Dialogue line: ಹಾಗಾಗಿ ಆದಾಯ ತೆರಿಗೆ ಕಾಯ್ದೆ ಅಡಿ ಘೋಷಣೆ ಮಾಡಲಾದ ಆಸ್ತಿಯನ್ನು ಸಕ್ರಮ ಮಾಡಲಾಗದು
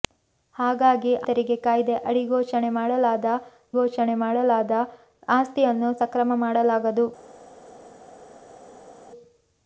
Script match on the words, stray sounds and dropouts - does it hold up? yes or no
no